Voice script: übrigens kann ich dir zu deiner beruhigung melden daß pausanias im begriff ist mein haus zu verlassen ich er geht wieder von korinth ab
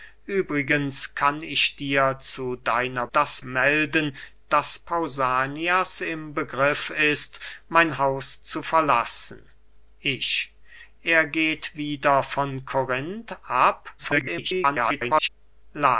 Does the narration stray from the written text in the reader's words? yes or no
yes